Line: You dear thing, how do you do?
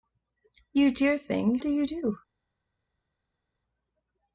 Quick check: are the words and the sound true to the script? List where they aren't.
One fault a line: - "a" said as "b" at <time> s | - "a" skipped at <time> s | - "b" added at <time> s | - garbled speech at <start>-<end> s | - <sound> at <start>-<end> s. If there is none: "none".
- "how" skipped at 1.6 s